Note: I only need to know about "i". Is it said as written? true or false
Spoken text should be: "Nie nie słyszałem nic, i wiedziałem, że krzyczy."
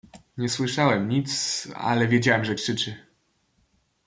false